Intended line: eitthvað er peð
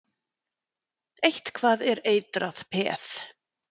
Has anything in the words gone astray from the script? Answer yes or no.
yes